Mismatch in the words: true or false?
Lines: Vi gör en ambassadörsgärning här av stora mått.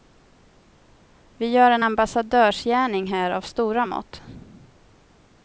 false